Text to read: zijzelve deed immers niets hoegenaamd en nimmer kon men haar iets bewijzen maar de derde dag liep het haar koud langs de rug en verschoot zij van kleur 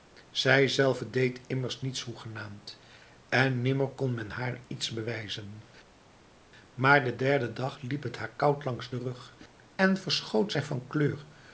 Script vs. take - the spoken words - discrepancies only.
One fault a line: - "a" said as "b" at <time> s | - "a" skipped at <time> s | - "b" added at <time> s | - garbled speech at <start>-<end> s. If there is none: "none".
none